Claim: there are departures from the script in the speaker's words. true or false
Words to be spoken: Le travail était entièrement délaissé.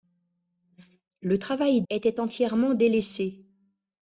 false